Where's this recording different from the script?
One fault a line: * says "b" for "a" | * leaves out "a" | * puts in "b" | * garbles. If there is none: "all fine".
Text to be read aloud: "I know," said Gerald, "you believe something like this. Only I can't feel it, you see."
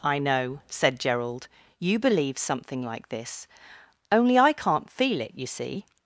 all fine